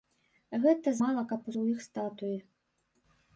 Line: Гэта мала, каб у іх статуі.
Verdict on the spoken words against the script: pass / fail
pass